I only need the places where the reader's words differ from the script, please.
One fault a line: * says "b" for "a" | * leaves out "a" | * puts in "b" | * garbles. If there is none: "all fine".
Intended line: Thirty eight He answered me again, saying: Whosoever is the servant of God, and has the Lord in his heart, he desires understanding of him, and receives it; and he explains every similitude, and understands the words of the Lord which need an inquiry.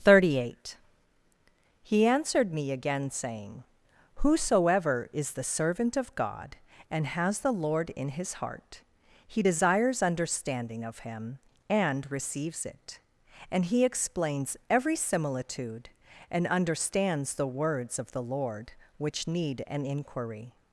all fine